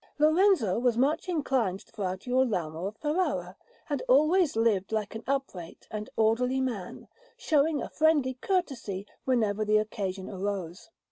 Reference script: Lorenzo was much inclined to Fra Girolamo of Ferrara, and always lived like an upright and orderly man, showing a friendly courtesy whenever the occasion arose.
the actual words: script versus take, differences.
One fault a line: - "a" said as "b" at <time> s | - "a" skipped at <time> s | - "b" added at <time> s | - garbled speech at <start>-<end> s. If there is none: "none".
none